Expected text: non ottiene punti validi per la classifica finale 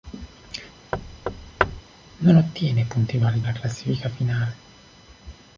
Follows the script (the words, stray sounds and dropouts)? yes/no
no